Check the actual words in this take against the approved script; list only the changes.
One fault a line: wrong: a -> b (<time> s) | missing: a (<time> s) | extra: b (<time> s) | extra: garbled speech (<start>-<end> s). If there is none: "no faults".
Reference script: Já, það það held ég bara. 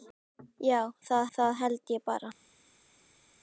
no faults